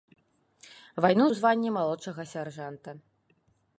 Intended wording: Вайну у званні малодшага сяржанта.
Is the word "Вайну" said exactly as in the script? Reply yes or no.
yes